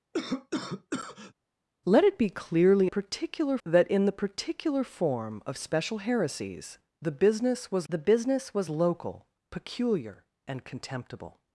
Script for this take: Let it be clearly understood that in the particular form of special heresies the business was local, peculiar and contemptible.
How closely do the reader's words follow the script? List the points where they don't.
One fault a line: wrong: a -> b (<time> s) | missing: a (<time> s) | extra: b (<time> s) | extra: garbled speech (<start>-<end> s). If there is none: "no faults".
wrong: understood -> particular (2.8 s)
extra: the business was (7.9 s)